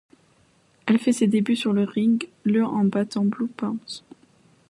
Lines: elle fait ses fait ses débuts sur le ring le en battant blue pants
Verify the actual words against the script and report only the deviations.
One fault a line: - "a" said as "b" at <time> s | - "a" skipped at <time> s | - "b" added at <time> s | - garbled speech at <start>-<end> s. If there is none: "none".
- "fait ses" skipped at 1.3 s